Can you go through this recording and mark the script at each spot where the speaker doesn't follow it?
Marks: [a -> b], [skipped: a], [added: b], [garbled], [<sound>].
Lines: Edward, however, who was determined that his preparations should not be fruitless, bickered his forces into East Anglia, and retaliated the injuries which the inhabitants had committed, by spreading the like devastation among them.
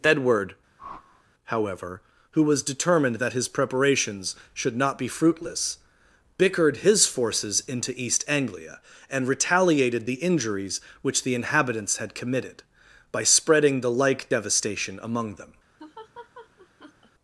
Edward, [whoosh] however, who was determined that his preparations should not be fruitless, bickered his forces into East Anglia, and retaliated the injuries which the inhabitants had committed, by spreading the like devastation among them. [laugh]